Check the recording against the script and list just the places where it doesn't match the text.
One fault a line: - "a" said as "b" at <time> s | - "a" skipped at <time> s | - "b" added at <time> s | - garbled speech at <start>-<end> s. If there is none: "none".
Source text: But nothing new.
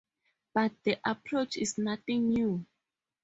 - "the approach is" added at 0.8 s